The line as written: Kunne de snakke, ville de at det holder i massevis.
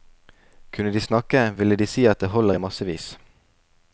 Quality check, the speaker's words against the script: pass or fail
fail